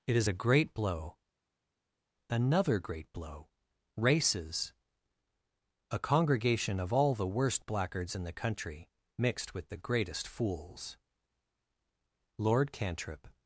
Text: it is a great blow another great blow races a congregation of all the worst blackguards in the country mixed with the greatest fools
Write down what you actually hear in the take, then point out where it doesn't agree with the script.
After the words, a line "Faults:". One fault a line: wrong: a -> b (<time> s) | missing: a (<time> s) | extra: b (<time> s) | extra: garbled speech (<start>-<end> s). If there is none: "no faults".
it is a great blow another great blow races a congregation of all the worst blackguards in the country mixed with the greatest fools lord cantrip
Faults:
extra: lord cantrip (12.4 s)